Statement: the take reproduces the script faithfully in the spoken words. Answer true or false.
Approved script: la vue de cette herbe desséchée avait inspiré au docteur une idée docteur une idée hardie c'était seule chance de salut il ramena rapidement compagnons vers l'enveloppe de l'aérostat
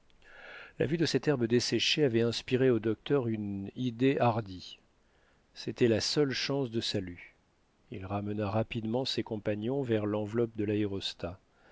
false